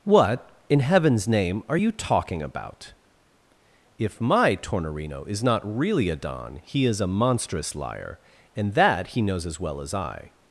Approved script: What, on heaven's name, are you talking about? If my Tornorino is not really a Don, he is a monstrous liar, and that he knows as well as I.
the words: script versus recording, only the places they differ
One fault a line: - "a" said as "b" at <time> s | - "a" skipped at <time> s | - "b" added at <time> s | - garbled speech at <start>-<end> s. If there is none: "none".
- "on" said as "in" at 0.7 s